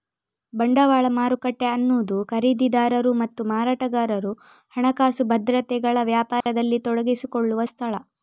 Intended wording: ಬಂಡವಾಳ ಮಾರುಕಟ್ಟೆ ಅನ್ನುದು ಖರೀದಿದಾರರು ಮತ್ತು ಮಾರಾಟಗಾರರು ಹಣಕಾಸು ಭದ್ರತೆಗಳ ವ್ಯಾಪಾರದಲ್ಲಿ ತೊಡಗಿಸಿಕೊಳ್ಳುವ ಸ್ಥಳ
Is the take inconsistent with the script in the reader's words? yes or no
no